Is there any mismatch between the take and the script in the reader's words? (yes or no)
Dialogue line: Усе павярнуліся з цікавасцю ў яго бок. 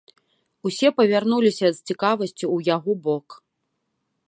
no